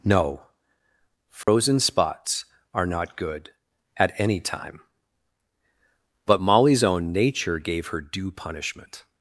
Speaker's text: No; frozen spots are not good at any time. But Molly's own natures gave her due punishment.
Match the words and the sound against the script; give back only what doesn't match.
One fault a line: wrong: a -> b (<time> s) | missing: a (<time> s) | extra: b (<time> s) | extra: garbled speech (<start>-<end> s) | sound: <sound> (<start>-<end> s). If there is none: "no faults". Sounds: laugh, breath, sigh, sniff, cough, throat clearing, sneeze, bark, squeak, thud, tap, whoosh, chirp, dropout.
sound: dropout (1.4-1.5 s)
wrong: natures -> nature (7.1 s)